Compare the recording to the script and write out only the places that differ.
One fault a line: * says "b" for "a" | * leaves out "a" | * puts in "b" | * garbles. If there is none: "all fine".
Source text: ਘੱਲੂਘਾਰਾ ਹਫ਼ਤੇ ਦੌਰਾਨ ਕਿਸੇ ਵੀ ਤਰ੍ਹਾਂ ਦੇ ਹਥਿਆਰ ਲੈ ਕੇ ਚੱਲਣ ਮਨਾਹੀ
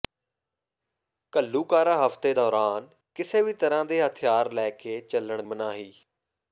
all fine